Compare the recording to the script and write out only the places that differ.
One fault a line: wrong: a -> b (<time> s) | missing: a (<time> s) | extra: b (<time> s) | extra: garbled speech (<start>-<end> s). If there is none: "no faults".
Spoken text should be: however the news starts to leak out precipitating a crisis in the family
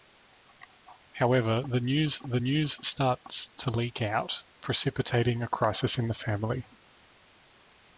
extra: the news (2.2 s)